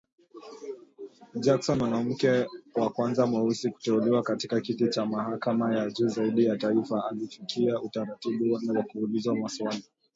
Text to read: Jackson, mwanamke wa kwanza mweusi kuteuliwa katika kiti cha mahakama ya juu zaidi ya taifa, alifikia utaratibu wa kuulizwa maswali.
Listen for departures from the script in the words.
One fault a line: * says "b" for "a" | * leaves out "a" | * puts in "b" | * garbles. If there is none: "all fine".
all fine